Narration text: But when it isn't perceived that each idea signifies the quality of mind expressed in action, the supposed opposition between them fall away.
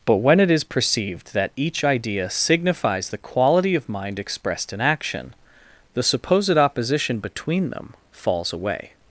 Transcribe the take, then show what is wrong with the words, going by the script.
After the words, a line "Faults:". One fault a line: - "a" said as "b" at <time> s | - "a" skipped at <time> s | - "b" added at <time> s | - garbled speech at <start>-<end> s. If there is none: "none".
But when it is perceived that each idea signifies the quality of mind expressed in action, the supposed opposition between them falls away.
Faults:
- "isn't" said as "is" at 0.5 s
- "fall" said as "falls" at 8.1 s